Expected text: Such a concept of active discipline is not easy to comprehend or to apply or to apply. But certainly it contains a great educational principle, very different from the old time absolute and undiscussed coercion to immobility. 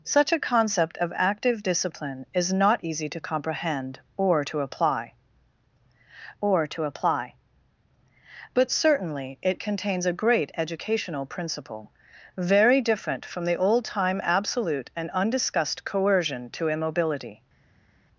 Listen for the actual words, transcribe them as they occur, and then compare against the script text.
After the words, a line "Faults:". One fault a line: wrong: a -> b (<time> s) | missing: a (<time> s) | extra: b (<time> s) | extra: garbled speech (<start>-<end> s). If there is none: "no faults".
Such a concept of active discipline is not easy to comprehend or to apply or to apply. But certainly it contains a great educational principle, very different from the old time absolute and undiscussed coercion to immobility.
Faults:
no faults